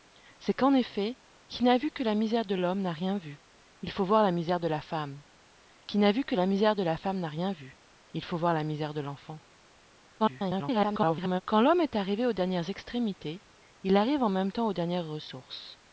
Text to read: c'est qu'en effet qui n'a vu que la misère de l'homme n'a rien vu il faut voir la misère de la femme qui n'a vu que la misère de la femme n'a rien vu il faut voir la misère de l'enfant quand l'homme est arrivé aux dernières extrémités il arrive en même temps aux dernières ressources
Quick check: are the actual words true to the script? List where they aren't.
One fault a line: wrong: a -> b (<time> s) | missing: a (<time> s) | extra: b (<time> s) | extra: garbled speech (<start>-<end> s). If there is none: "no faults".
extra: garbled speech (10.2-11.4 s)